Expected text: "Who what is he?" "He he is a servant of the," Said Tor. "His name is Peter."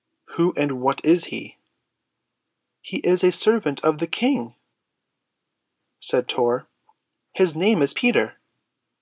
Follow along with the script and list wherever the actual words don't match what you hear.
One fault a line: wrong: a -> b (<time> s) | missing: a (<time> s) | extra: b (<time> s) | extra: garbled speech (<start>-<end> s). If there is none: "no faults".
extra: and (0.6 s)
missing: he (3.0 s)
extra: King (4.1 s)